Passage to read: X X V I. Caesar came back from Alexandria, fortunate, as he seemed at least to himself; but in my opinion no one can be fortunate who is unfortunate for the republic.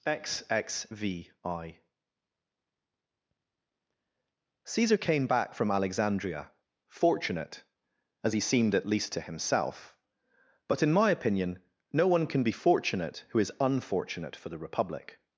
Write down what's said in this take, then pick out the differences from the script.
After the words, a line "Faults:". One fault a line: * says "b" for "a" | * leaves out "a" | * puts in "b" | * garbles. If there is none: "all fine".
X X V I. Caesar came back from Alexandria, fortunate, as he seemed at least to himself; but in my opinion no one can be fortunate who is unfortunate for the republic.
Faults:
all fine